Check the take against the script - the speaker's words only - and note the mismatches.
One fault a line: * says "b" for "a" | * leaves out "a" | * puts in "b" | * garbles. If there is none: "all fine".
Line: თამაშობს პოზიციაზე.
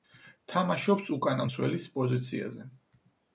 * puts in "უკანა მცველის"